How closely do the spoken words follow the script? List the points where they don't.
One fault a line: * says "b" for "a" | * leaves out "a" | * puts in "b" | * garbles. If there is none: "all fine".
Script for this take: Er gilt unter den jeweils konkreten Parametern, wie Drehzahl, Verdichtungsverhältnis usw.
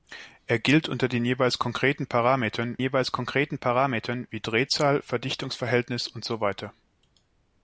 * puts in "jeweils konkreten Parametern"